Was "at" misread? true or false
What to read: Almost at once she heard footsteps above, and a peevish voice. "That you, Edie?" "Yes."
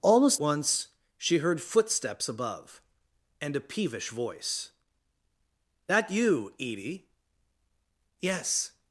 true